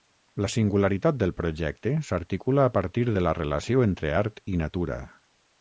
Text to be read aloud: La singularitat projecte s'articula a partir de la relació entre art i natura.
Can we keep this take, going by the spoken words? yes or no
no